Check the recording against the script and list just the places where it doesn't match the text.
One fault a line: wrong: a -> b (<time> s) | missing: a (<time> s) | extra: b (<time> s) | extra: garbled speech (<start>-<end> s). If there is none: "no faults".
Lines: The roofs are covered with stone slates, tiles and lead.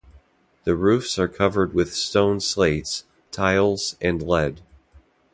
no faults